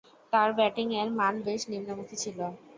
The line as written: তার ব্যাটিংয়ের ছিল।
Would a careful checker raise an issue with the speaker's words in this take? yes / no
yes